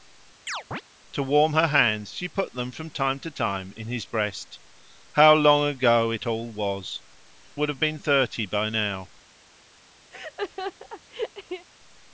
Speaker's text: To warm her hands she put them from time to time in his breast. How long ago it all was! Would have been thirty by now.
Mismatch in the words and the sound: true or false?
true